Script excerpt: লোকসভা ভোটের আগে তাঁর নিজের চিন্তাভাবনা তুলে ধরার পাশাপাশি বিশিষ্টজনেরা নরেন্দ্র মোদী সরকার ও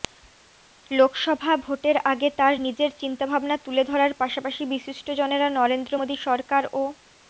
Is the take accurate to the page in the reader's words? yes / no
yes